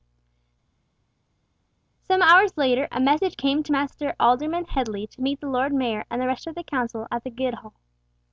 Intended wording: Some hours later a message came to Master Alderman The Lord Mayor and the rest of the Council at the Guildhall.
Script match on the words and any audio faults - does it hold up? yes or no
no